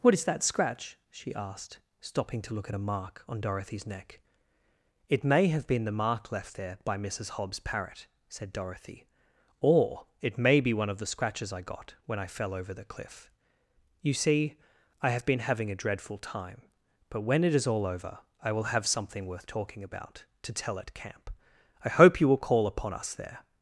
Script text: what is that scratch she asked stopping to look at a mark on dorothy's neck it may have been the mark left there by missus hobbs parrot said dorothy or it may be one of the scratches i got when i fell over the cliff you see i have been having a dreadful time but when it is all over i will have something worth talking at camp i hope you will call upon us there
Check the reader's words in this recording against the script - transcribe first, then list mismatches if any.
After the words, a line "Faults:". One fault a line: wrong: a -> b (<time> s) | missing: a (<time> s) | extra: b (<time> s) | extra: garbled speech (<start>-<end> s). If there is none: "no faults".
what is that scratch she asked stopping to look at a mark on dorothy's neck it may have been the mark left there by missus hobbs parrot said dorothy or it may be one of the scratches i got when i fell over the cliff you see i have been having a dreadful time but when it is all over i will have something worth talking about to tell at camp i hope you will call upon us there
Faults:
extra: about to tell (19.8 s)